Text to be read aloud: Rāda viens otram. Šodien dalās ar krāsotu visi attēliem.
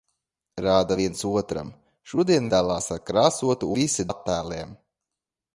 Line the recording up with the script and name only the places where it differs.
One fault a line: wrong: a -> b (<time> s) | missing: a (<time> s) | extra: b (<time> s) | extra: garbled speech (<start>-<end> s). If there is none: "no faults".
no faults